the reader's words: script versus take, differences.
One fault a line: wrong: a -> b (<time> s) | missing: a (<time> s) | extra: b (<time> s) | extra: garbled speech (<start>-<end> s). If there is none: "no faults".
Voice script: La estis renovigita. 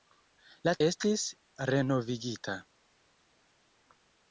no faults